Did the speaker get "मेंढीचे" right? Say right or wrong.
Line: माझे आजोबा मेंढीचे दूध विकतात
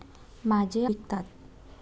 wrong